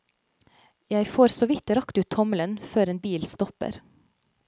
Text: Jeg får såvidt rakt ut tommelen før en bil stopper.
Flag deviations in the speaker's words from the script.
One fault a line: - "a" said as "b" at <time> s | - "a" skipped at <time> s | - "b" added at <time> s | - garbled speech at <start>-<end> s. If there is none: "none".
none